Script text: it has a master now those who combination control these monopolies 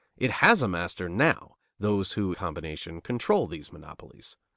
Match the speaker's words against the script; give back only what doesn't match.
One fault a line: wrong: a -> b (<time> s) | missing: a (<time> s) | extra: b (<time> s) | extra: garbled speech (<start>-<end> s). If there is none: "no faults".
no faults